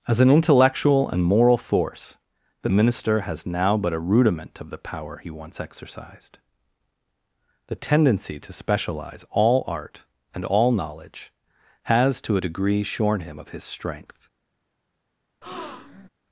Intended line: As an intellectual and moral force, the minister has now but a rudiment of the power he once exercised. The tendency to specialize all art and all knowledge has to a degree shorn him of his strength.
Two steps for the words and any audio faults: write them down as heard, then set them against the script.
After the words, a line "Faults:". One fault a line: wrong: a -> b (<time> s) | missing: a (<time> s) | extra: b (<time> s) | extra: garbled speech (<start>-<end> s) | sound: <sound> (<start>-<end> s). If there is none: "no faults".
As an intellectual and moral force, the minister has now but a rudiment of the power he once exercised. The tendency to specialize all art and all knowledge has to a degree shorn him of his strength.
Faults:
sound: breath (15.4-16.1 s)